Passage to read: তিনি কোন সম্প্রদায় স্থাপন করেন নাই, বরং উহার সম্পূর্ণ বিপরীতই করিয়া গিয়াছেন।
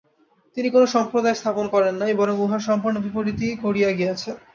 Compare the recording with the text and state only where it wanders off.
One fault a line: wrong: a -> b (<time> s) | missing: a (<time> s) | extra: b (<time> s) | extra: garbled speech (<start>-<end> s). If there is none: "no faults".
no faults